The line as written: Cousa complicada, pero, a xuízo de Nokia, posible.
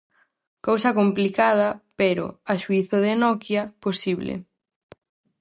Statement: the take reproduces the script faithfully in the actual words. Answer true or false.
true